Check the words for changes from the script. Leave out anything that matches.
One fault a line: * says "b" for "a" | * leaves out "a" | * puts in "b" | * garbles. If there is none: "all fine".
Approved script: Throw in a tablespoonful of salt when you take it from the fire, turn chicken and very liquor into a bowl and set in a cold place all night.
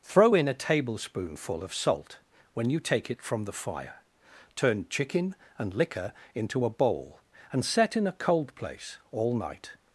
* leaves out "very"